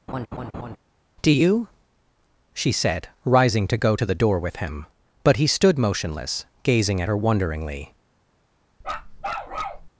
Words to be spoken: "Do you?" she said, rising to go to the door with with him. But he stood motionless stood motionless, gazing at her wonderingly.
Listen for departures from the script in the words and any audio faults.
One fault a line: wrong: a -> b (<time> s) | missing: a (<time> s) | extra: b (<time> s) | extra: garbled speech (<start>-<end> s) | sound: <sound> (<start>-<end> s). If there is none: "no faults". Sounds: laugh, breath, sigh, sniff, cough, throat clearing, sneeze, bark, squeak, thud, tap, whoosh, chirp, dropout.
sound: laugh (0.1-0.8 s)
missing: with (4.6 s)
missing: stood motionless (6.4 s)
sound: bark (8.8-9.9 s)